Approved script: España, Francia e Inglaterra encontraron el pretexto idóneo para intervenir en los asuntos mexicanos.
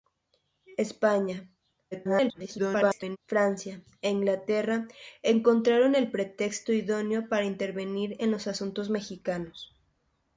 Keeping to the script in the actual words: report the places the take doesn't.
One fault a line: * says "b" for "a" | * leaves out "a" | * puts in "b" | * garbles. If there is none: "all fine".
* garbles